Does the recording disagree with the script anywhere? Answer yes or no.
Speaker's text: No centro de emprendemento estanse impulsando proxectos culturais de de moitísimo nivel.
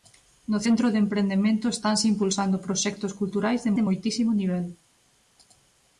no